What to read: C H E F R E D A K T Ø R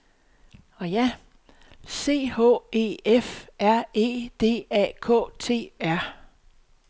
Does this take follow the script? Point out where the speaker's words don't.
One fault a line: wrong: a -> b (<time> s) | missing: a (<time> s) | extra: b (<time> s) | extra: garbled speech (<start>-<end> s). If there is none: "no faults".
missing: Ø (5.7 s)